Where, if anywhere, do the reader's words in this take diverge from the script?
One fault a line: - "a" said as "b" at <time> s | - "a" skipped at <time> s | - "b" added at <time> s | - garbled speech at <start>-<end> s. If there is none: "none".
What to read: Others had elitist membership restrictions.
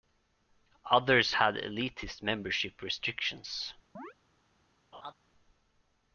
none